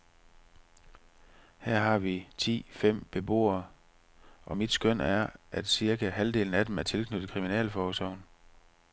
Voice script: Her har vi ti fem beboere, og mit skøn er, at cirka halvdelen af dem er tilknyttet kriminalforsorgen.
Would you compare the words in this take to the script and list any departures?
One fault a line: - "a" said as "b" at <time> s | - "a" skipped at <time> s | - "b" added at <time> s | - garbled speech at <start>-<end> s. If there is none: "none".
none